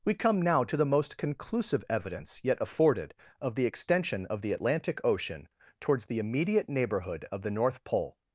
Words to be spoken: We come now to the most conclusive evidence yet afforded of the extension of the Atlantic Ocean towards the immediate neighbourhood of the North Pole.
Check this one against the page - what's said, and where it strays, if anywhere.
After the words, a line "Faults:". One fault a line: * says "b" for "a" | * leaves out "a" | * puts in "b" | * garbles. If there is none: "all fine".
We come now to the most conclusive evidence yet afforded of the extension of the Atlantic Ocean towards the immediate neighbourhood of the North Pole.
Faults:
all fine